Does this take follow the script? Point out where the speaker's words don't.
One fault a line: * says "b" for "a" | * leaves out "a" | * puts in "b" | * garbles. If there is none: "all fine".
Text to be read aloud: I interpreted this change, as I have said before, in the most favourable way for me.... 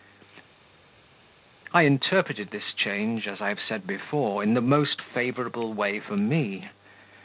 all fine